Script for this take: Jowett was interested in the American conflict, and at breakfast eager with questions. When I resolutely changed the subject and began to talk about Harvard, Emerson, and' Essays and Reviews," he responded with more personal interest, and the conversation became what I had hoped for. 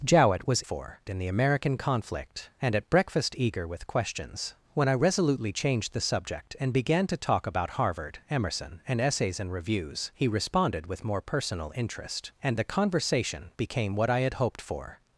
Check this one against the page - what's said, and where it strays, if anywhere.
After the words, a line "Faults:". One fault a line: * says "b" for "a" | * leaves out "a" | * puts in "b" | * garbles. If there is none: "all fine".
Jowett was for in the American conflict, and at breakfast eager with questions. When I resolutely changed the subject and began to talk about Harvard, Emerson, and' Essays and Reviews," he responded with more personal interest, and the conversation became what I had hoped for.
Faults:
* says "for" for "interested"